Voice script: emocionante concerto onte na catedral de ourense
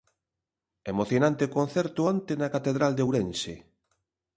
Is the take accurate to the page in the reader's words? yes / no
yes